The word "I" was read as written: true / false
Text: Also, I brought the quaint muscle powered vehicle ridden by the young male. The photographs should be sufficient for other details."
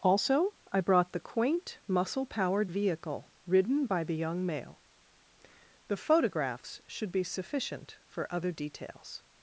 true